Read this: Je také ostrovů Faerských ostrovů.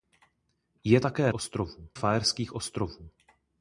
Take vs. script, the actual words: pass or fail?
pass